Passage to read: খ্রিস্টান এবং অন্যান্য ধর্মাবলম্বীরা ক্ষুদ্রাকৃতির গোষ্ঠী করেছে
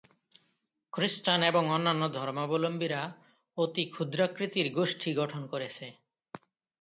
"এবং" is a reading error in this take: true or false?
false